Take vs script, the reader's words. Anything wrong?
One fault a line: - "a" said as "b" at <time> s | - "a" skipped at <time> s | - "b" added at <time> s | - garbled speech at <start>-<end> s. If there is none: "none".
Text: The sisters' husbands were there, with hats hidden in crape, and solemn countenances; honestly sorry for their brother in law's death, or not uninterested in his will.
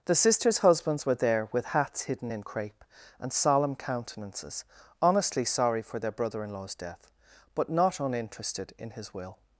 - "or" said as "but" at 7.5 s